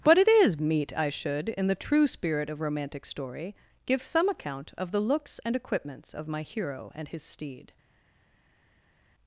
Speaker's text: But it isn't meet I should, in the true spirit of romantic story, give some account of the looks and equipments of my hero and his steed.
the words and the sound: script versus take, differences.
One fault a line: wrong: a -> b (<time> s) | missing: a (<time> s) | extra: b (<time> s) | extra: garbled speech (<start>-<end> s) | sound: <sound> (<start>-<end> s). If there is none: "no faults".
wrong: isn't -> is (0.3 s)